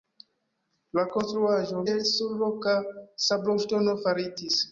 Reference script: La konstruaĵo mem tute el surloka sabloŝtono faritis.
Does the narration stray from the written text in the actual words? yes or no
yes